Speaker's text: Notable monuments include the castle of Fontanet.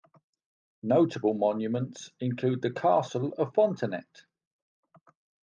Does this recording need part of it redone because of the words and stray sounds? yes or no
no